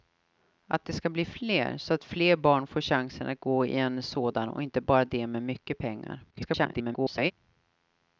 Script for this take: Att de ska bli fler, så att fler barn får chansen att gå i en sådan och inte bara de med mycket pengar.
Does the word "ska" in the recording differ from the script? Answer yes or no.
no